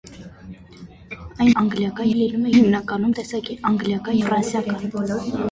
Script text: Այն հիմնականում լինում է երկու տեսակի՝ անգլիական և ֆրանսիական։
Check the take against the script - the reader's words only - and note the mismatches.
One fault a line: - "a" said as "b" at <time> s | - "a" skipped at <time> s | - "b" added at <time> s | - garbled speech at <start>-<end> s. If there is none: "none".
- "հիմնականում" said as "անգլիական" at 1.6 s
- "երկու" said as "հիմնականում" at 2.5 s
- "և" skipped at 4.2 s